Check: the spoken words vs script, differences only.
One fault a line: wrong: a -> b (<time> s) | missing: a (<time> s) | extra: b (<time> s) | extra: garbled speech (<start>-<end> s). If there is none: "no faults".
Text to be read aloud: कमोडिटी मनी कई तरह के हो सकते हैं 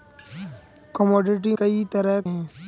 missing: मनी (1.5 s)
missing: के हो सकते (2.2 s)